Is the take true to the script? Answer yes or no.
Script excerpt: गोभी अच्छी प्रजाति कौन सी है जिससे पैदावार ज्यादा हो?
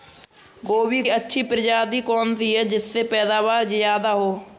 yes